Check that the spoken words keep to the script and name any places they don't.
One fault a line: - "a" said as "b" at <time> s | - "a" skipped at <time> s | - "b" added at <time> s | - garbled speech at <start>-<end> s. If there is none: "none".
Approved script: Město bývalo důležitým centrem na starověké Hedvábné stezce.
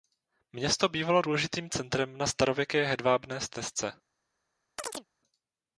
none